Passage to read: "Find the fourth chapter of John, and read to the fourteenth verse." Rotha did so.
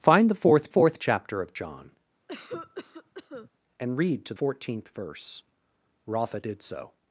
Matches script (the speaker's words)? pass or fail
fail